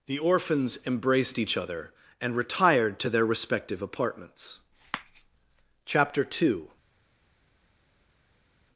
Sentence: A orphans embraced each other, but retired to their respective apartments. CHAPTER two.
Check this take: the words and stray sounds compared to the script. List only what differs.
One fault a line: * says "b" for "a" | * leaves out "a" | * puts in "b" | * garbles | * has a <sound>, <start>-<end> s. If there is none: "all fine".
* says "The" for "A"
* says "and" for "but"